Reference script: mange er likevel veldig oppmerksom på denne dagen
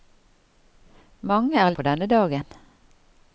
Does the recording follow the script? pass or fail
fail